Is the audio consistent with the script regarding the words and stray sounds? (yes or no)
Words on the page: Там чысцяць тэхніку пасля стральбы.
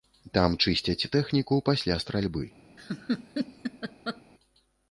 no